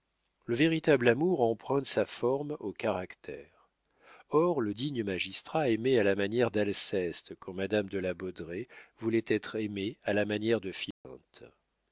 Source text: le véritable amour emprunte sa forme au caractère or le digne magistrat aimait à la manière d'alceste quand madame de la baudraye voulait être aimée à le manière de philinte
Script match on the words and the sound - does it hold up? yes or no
no